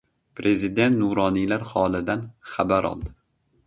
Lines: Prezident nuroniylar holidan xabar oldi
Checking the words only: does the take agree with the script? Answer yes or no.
yes